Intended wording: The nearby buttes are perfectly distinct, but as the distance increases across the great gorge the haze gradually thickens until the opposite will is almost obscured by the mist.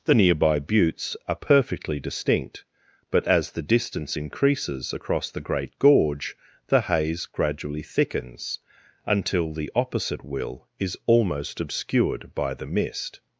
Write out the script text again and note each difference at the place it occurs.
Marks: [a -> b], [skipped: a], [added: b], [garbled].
The nearby buttes are perfectly distinct, but as the distance increases across the great gorge the haze gradually thickens until the opposite will is almost obscured by the mist.